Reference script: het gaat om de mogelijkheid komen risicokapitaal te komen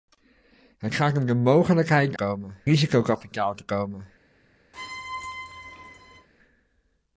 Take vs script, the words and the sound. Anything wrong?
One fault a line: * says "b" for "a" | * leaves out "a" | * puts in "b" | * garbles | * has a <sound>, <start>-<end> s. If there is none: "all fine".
* has a squeak, 4.7-6.3 s